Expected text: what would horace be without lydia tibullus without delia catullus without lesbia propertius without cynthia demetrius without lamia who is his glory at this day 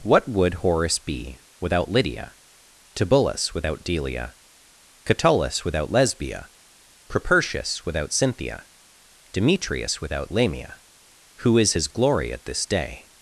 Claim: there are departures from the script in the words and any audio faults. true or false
false